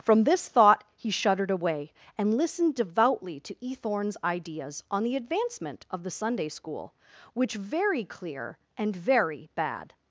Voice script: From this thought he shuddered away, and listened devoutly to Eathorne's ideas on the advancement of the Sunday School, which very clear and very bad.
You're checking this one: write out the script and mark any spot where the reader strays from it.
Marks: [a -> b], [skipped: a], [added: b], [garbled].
From this thought he shuddered away, and listened devoutly to Eathorne's ideas on the advancement of the Sunday School, which very clear and very bad.